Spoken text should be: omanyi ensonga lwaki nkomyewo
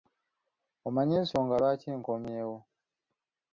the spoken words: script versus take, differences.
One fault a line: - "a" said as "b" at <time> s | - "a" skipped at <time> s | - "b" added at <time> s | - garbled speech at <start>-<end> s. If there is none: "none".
none